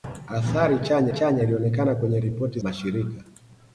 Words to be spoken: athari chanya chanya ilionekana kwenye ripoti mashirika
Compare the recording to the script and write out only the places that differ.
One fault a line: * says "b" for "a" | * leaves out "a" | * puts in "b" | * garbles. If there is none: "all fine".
all fine